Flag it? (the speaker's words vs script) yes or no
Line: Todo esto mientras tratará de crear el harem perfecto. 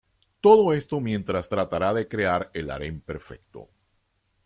no